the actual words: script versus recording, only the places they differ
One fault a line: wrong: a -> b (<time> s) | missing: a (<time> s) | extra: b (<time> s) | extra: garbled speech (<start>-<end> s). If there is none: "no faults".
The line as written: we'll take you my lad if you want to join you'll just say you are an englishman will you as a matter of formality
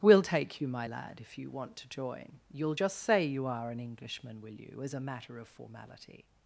no faults